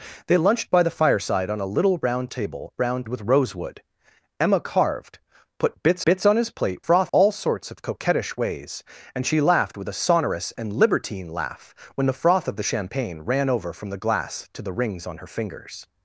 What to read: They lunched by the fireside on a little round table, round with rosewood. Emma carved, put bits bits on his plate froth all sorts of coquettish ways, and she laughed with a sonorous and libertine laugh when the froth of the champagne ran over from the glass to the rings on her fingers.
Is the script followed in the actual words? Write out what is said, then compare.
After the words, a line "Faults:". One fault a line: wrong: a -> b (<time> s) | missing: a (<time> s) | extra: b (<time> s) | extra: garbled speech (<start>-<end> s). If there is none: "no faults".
They lunched by the fireside on a little round table, round with rosewood. Emma carved, put bits bits on his plate froth all sorts of coquettish ways, and she laughed with a sonorous and libertine laugh when the froth of the champagne ran over from the glass to the rings on her fingers.
Faults:
no faults